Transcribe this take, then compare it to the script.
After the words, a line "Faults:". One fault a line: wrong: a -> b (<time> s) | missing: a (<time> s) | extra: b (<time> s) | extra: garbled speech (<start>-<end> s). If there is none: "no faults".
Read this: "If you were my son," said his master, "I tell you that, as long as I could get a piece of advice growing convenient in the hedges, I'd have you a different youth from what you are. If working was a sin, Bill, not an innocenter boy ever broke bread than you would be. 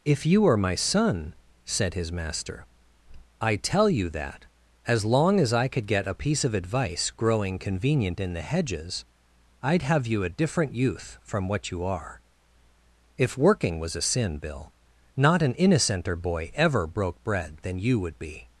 "If you are my son," said his master, "I tell you that, as long as I could get a piece of advice growing convenient in the hedges, I'd have you a different youth from what you are. If working was a sin, Bill, not an innocenter boy ever broke bread than you would be.
Faults:
wrong: were -> are (0.5 s)